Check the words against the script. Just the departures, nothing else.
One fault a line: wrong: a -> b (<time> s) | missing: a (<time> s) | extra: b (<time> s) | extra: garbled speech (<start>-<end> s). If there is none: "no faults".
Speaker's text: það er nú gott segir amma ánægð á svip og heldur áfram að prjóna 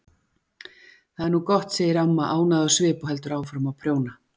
no faults